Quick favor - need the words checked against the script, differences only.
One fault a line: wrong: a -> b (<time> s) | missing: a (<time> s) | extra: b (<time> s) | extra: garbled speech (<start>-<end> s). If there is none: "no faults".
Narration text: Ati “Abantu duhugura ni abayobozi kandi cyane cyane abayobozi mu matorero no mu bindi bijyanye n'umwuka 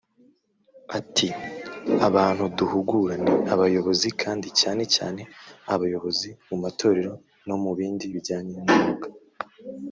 no faults